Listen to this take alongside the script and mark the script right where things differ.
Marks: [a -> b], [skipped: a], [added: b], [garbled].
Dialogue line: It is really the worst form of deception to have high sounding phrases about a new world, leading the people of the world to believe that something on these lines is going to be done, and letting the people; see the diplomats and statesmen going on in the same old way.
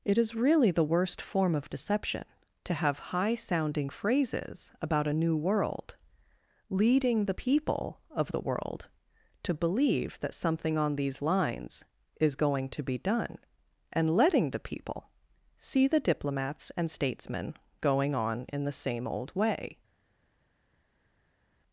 It is really the worst form of deception to have high sounding phrases about a new world, leading the people of the world to believe that something on these lines is going to be done, and letting the people; see the diplomats and statesmen going on in the same old way.